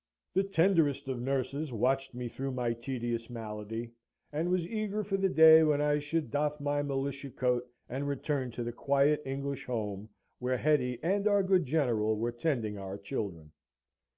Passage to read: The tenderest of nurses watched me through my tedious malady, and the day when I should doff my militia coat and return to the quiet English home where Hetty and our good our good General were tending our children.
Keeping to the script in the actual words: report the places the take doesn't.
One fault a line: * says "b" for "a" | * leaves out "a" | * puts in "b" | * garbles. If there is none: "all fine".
* puts in "was eager for"
* leaves out "our good"